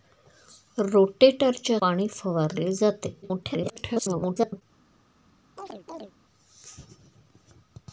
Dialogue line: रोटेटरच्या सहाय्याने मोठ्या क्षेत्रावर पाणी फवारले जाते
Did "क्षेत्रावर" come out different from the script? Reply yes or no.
yes